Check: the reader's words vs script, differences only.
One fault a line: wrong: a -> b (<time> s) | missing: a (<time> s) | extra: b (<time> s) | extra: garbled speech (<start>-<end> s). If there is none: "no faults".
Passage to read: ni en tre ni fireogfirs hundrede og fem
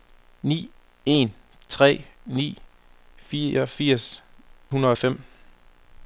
no faults